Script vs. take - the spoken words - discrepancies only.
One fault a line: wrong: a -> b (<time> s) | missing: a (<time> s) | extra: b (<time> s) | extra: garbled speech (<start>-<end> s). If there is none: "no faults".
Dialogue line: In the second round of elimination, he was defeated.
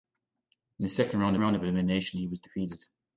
extra: round (1.4 s)